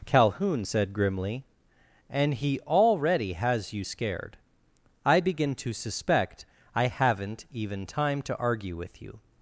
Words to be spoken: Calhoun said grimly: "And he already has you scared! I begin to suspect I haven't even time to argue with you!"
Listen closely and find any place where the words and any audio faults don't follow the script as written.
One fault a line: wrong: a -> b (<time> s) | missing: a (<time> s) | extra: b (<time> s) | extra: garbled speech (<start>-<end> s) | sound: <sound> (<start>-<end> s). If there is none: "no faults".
no faults